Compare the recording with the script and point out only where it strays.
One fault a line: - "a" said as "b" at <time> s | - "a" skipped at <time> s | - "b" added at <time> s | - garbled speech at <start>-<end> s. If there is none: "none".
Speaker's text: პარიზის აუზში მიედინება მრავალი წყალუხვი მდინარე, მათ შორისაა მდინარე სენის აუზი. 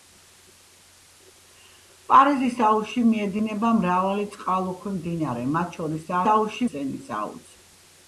- "მდინარე" said as "აუზში" at 6.3 s